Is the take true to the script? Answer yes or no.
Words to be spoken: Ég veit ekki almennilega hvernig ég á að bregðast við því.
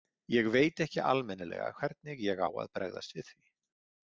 yes